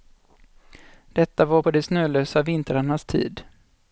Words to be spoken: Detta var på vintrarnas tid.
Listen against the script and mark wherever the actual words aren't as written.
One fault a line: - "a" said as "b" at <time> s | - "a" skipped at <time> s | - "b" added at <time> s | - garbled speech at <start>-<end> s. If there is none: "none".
- "de snölösa" added at 1.7 s